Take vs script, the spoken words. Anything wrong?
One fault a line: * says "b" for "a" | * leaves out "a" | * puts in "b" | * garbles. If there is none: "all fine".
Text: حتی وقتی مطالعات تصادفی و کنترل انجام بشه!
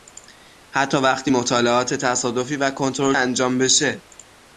all fine